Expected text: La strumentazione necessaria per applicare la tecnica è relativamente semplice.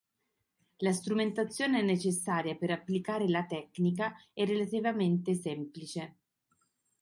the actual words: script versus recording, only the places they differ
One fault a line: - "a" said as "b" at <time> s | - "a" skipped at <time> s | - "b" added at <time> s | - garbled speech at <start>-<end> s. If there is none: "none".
none